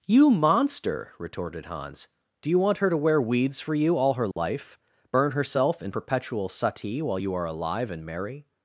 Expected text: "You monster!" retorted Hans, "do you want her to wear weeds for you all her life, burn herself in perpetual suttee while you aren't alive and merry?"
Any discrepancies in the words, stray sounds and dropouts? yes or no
yes